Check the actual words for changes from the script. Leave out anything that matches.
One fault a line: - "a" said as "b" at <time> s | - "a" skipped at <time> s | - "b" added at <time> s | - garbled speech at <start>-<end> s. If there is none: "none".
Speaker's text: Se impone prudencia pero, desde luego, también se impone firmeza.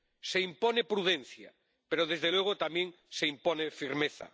none